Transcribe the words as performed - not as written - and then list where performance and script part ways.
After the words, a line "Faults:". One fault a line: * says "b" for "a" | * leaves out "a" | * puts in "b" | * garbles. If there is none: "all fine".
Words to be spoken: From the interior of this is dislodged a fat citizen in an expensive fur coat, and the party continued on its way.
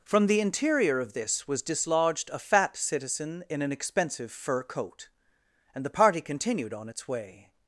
From the interior of this was dislodged a fat citizen in an expensive fur coat, and the party continued on its way.
Faults:
* says "was" for "is"